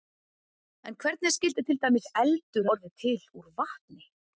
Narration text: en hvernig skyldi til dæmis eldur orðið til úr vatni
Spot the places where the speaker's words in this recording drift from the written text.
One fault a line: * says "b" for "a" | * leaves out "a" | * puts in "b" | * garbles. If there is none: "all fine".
all fine